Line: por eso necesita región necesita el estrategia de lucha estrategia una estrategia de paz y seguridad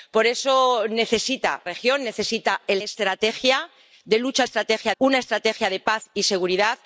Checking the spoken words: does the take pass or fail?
pass